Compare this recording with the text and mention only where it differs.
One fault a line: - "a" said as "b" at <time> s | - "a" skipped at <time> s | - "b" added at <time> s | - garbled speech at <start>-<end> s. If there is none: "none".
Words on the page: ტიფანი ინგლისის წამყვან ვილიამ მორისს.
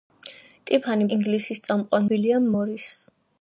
none